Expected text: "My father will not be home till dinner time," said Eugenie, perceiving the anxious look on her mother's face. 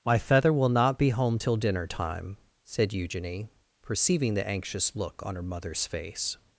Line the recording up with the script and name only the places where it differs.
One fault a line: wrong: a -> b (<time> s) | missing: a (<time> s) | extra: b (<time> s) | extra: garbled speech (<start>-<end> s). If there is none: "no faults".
wrong: father -> feather (0.2 s)